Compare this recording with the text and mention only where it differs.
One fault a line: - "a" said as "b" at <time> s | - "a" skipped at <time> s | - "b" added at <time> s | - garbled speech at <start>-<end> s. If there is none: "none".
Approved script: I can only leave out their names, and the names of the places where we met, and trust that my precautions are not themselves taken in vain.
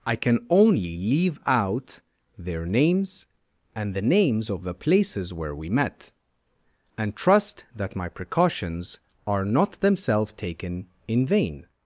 none